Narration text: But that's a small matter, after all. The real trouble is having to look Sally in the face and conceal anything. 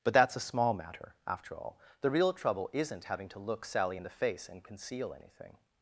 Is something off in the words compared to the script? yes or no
yes